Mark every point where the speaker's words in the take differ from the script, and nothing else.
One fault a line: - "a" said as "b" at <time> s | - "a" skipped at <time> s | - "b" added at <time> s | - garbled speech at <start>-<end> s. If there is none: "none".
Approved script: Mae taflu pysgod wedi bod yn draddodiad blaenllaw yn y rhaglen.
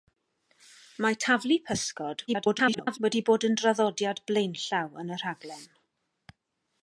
- garbled speech at 2.3-3.0 s